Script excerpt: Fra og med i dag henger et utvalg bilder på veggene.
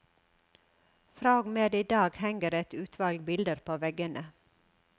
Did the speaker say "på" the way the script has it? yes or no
yes